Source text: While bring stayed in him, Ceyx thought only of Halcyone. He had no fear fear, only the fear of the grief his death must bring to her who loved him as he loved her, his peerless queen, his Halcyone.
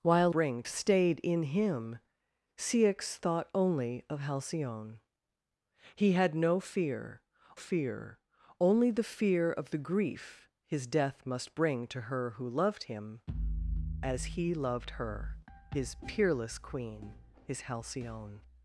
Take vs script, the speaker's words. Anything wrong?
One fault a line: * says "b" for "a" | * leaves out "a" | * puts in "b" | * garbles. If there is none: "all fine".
all fine